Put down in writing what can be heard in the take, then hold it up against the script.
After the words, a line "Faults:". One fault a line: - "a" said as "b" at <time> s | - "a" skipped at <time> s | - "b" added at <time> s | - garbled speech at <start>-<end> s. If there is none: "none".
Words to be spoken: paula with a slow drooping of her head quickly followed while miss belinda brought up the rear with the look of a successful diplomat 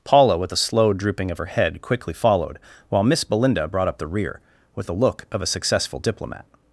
paula with a slow drooping of her head quickly followed while miss belinda brought up the rear with the look of a successful diplomat
Faults:
none